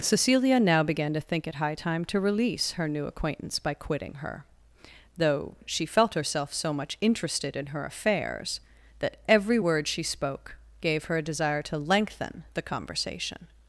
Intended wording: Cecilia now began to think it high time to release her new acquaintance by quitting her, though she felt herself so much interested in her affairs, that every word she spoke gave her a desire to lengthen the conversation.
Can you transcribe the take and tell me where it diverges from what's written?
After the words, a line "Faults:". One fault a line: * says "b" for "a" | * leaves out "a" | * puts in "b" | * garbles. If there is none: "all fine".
Cecilia now began to think it high time to release her new acquaintance by quitting her, though she felt herself so much interested in her affairs, that every word she spoke gave her a desire to lengthen the conversation.
Faults:
all fine